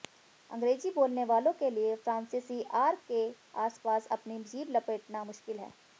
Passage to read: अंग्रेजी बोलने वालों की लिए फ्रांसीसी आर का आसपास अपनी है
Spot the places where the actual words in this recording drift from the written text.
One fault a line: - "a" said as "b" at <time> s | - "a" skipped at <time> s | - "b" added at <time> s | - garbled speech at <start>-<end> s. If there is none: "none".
- "की" said as "के" at 1.6 s
- "का" said as "के" at 3.1 s
- "जीभ लपेटना मुश्किल" added at 4.5 s